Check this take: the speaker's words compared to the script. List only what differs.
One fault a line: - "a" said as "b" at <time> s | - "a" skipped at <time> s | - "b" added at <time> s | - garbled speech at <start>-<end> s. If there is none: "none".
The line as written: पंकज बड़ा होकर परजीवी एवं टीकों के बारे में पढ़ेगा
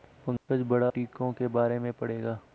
- "होकर परजीवी एवं" skipped at 0.9 s